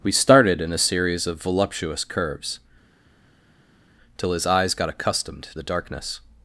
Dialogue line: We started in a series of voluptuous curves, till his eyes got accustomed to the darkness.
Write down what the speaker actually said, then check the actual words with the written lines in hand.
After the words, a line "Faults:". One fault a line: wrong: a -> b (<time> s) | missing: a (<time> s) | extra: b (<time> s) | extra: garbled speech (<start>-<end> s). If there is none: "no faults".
We started in a series of voluptuous curves, till his eyes got accustomed the darkness.
Faults:
missing: to (5.5 s)